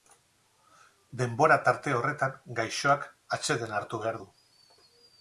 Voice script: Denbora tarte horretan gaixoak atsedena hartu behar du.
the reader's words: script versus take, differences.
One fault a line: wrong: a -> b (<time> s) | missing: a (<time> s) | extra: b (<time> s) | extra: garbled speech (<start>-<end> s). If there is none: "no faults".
no faults